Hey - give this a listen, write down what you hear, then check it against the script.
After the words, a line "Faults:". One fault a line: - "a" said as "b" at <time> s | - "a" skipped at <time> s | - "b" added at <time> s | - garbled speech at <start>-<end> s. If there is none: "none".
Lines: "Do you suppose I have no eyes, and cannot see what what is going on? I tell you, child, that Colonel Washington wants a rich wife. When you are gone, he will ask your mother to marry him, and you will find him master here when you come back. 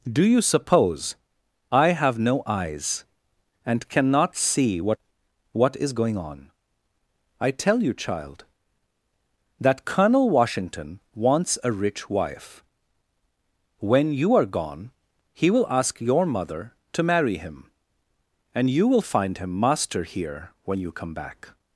"Do you suppose I have no eyes, and cannot see what what is going on? I tell you, child, that Colonel Washington wants a rich wife. When you are gone, he will ask your mother to marry him, and you will find him master here when you come back.
Faults:
none